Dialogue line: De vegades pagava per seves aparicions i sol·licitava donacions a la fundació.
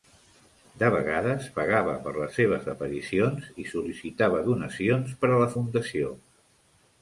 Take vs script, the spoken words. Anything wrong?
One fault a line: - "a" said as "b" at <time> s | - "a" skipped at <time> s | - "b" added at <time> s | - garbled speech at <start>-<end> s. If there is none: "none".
- "les" added at 2.1 s
- "per" added at 5.3 s